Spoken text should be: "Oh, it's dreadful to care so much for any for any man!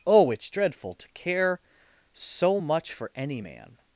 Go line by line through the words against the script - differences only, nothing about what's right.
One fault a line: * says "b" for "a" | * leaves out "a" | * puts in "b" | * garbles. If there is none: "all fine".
* leaves out "for any"